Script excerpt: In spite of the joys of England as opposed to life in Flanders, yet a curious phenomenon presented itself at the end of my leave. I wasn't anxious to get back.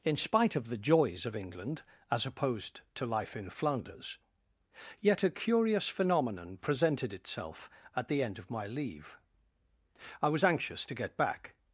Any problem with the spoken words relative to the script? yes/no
yes